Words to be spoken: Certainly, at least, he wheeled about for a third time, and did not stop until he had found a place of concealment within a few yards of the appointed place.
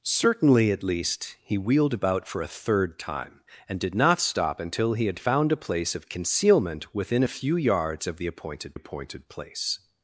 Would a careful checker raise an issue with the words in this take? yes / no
yes